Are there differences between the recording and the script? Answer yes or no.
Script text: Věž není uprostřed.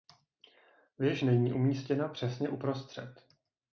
yes